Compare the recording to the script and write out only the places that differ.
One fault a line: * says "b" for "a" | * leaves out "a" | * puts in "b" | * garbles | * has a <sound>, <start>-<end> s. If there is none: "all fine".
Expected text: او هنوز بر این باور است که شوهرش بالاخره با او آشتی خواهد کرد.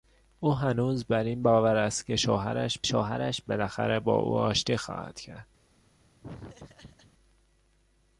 * puts in "شوهرش"
* has a laugh, 6.2-7.1 s